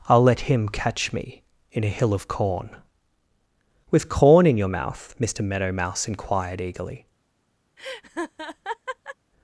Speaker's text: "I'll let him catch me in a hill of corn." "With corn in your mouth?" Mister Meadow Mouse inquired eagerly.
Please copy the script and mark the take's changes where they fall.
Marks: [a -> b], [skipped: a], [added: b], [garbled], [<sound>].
"I'll let him catch me in a hill of corn." "With corn in your mouth?" Mister Meadow Mouse inquired eagerly. [laugh]